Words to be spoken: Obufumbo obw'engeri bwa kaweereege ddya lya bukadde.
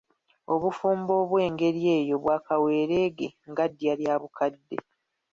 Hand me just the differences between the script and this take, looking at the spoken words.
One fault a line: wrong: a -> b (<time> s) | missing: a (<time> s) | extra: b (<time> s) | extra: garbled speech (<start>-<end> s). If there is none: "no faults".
extra: eyo (2.0 s)
extra: nga (3.5 s)